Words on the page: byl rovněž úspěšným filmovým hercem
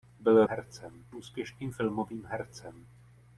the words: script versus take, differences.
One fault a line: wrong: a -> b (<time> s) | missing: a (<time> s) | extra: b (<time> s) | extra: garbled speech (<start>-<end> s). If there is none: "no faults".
wrong: rovněž -> hercem (0.4 s)